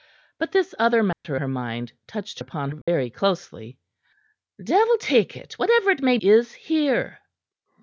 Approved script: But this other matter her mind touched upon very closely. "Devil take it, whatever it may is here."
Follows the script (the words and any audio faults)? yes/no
no